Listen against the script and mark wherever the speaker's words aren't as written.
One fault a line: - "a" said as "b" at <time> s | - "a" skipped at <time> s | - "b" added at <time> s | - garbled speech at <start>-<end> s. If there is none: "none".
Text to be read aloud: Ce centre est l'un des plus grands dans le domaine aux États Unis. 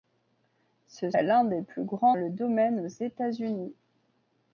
- "centre" skipped at 1.1 s
- "dans" skipped at 2.1 s